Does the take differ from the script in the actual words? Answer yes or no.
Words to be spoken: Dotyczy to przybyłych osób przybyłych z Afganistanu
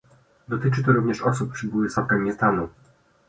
yes